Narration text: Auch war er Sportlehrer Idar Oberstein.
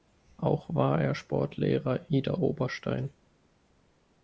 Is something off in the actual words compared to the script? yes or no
no